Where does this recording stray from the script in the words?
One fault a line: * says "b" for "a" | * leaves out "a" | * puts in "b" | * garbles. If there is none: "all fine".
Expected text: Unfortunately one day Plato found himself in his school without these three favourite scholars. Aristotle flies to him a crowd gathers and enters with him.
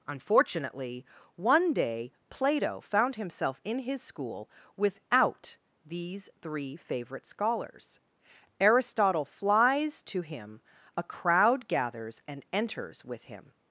all fine